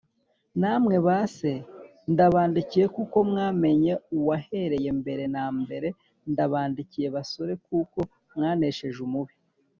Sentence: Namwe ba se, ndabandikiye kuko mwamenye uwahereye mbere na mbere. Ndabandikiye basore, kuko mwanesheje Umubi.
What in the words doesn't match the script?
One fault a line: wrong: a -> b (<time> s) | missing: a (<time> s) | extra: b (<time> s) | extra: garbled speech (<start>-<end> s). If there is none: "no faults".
no faults